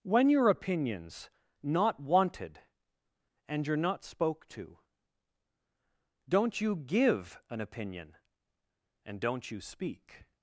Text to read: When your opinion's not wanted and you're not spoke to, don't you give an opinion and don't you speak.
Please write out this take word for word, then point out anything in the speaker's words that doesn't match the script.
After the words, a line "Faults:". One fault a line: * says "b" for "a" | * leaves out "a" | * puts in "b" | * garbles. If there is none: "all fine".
When your opinion's not wanted and you're not spoke to, don't you give an opinion and don't you speak.
Faults:
all fine